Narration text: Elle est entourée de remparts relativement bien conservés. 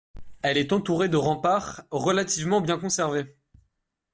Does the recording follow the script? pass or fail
pass